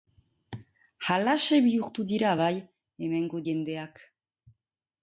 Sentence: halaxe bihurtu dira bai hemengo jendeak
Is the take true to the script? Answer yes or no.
yes